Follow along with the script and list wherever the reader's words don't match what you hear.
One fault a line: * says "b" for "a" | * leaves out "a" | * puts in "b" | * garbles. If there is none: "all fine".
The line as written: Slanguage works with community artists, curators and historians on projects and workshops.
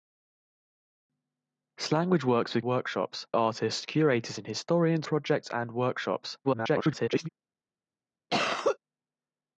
* says "workshops" for "community"
* leaves out "on"
* garbles